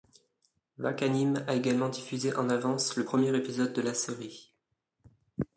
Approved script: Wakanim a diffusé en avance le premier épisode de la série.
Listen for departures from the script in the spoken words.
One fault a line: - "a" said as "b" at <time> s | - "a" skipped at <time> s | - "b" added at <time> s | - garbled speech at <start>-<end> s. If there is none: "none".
- "également" added at 1.5 s